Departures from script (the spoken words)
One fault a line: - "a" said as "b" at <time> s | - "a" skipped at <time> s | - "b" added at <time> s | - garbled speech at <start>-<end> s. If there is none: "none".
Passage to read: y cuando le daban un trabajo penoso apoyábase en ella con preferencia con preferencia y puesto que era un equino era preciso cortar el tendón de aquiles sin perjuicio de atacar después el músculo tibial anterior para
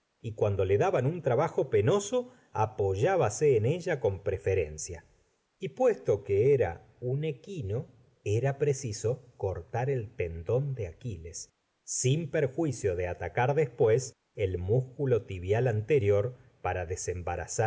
- "con preferencia" skipped at 5.0 s